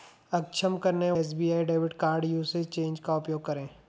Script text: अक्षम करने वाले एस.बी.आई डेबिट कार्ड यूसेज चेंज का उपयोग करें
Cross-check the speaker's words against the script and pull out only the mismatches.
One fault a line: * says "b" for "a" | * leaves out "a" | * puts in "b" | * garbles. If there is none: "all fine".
* leaves out "वाले"